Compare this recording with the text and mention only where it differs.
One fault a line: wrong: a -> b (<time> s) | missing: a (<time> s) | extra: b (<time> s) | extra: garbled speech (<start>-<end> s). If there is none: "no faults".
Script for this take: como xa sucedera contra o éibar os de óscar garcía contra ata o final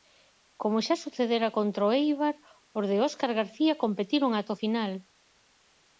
wrong: contra -> competiron (3.8 s)